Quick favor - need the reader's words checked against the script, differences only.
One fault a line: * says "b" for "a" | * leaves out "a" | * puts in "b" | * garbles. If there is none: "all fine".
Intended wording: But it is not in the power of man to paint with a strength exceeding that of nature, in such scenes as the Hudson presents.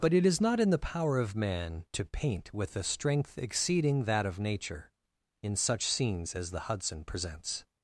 all fine